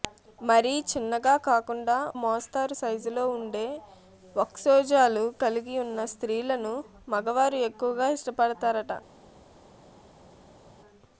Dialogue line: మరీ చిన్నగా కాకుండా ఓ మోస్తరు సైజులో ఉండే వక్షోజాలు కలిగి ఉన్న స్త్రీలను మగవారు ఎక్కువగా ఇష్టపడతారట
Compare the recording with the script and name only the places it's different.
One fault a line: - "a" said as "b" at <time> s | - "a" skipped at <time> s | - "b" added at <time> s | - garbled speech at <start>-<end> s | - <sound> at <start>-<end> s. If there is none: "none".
- "ఓ" skipped at 2.0 s